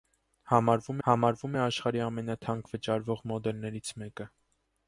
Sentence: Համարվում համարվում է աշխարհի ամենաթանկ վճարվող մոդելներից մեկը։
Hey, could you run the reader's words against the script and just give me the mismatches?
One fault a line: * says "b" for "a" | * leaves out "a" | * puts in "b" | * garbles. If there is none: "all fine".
all fine